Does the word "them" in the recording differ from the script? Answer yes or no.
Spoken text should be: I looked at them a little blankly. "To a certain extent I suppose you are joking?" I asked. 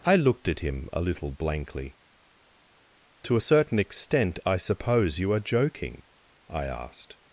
yes